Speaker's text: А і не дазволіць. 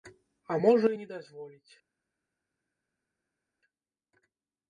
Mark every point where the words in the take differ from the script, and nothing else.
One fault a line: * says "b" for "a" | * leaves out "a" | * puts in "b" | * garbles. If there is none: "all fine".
* puts in "можа"